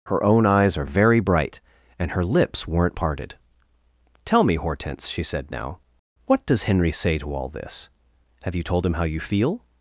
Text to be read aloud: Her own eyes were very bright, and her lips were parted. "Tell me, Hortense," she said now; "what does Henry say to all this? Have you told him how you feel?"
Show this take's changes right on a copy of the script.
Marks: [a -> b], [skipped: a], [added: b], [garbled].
Her own eyes [were -> are] very bright, and her lips [were -> weren't] parted. "Tell me, Hortense," she said now; "what does Henry say to all this? Have you told him how you feel?"